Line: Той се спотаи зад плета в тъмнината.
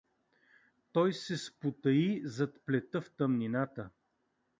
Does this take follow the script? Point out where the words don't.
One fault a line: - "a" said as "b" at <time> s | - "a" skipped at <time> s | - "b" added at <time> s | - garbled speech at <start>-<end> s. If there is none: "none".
none